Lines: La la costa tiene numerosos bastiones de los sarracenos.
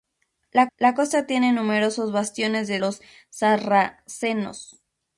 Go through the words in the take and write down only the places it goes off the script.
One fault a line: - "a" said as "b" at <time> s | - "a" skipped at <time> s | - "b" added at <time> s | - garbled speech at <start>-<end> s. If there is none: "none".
none